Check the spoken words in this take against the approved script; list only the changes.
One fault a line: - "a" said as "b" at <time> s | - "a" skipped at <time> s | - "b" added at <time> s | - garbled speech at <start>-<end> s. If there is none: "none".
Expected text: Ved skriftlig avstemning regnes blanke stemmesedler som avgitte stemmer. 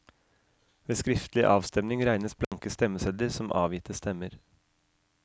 none